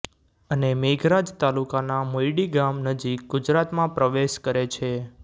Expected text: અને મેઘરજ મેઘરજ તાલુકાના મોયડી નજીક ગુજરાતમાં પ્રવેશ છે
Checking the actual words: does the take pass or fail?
fail